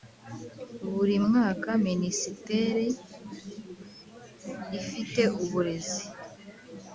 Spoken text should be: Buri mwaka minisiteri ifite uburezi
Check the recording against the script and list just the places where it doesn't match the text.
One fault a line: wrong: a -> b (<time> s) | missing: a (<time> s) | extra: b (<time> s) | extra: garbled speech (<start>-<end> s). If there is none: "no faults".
no faults